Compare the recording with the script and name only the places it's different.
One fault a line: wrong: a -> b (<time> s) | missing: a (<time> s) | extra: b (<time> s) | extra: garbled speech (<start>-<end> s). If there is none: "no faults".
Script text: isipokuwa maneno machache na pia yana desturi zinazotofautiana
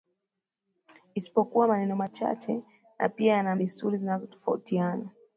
no faults